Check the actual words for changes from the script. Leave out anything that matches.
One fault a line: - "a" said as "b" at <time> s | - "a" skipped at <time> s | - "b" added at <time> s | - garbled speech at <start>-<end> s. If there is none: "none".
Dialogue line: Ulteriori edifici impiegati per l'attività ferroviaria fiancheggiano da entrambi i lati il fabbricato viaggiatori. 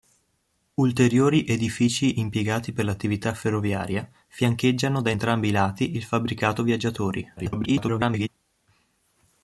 - garbled speech at 7.4-8.3 s